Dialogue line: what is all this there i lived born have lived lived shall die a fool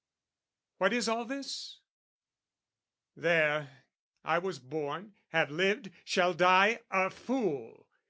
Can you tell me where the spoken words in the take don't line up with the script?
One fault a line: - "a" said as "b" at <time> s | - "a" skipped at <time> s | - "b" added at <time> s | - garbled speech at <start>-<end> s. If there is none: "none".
- "lived" said as "was" at 4.4 s
- "lived" skipped at 5.9 s